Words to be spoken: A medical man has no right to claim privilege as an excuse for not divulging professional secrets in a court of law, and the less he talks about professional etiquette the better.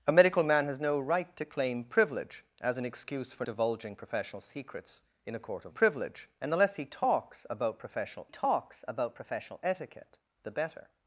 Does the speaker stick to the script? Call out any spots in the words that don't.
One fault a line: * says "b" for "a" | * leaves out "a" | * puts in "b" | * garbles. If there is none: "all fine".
* leaves out "not"
* says "privilege" for "law"
* puts in "talks about professional"